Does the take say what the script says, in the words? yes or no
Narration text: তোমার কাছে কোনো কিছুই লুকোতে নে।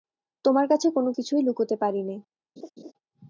no